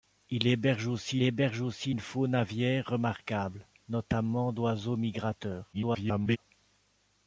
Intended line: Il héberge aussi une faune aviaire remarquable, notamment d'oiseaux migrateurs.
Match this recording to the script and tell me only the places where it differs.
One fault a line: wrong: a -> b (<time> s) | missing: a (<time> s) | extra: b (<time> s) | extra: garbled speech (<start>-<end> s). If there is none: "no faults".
extra: héberge aussi (1.2 s)
extra: garbled speech (5.7-6.4 s)